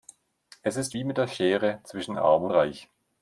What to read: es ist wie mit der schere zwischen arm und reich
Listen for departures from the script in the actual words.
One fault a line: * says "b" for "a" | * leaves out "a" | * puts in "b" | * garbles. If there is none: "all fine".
all fine